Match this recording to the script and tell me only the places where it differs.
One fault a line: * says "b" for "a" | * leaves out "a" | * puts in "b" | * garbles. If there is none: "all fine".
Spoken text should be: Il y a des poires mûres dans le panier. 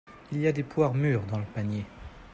all fine